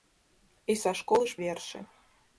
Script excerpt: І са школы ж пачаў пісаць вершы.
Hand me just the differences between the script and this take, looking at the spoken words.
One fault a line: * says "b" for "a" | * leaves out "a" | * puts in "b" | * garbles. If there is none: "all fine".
* leaves out "пачаў пісаць"